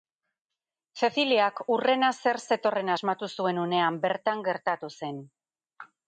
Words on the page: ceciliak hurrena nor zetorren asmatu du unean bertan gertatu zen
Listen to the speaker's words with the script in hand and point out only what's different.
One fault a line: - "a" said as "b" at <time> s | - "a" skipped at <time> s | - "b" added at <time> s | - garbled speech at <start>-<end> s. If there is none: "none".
- "nor" said as "zer" at 2.2 s
- "du" said as "zuen" at 3.4 s